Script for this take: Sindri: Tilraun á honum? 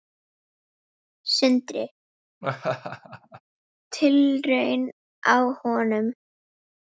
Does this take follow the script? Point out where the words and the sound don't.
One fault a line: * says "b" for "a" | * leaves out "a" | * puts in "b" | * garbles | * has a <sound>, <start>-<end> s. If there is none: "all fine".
* has a laugh, 2.4-3.4 s